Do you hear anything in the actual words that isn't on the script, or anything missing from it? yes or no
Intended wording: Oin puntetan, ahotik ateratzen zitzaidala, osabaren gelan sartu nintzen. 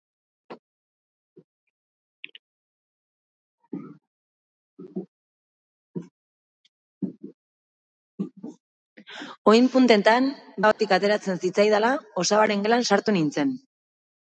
no